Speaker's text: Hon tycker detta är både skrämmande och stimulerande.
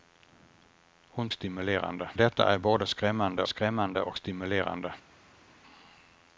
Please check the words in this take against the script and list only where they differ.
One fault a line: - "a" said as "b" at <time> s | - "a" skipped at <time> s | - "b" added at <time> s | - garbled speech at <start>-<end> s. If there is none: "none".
- "tycker" said as "stimulerande" at 1.3 s
- "skrämmande" added at 3.5 s